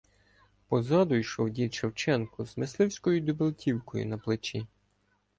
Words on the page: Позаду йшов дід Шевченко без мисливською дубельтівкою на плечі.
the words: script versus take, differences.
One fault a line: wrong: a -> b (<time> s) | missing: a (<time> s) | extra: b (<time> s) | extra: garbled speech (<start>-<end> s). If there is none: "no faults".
wrong: без -> з (2.5 s)